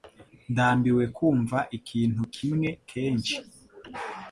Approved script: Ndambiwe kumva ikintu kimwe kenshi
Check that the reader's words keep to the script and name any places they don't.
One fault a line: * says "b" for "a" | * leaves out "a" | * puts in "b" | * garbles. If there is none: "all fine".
all fine